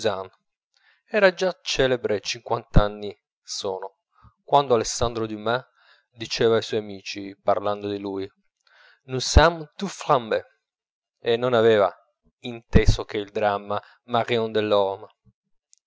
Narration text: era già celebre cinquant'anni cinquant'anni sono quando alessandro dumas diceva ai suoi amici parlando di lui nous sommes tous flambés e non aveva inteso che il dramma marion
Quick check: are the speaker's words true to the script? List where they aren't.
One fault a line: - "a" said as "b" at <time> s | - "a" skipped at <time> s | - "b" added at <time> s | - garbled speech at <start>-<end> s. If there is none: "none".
- "cinquant'anni" skipped at 3.1 s